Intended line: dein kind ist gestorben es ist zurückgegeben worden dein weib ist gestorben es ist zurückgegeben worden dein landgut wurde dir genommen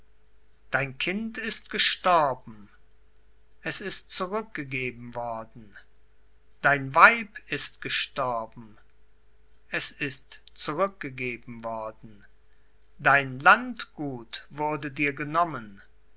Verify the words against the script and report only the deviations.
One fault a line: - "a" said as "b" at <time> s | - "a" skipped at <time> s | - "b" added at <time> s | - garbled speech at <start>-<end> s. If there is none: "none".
none